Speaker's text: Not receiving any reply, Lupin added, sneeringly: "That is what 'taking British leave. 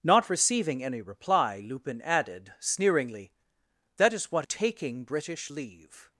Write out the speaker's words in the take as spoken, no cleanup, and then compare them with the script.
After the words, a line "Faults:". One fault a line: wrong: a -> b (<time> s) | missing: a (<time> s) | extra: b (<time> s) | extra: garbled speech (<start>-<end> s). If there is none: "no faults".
Not receiving any reply, Lupin added, sneeringly: "That is what 'taking British leave.
Faults:
no faults